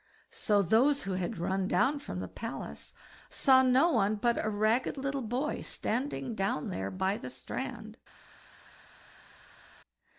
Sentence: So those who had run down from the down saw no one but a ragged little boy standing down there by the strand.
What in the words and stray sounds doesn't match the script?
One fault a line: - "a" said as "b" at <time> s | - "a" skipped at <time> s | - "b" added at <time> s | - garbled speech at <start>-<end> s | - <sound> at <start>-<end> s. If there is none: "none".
- "down" said as "palace" at 2.3 s